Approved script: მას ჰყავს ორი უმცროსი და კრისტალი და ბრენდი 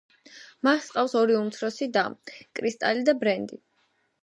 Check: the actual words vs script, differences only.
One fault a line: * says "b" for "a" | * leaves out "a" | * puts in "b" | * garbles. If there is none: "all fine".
all fine